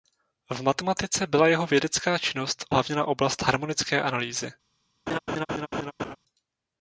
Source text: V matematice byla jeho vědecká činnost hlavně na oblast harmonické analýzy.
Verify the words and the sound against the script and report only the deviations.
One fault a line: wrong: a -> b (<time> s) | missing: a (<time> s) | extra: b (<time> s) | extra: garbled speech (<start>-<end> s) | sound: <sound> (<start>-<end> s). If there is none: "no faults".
sound: laugh (5.1-6.2 s)